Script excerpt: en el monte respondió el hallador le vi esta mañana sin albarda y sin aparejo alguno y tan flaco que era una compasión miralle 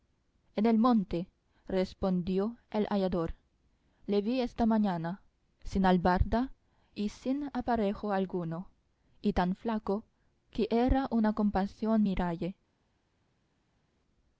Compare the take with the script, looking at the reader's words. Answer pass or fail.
pass